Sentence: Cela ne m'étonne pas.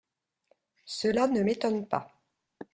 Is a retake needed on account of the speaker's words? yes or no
no